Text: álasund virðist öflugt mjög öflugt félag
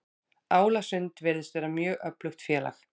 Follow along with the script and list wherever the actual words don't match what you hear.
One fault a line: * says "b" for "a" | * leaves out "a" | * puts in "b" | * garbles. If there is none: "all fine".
* says "vera" for "öflugt"